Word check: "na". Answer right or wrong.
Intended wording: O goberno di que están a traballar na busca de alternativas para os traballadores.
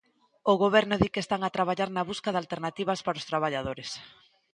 right